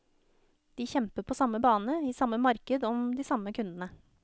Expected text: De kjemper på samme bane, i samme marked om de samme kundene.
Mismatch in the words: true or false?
false